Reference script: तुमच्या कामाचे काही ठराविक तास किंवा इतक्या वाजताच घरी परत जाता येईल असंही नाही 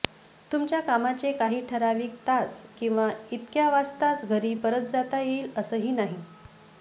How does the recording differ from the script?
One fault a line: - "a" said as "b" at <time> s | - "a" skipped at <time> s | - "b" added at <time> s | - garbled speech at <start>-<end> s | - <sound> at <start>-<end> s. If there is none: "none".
none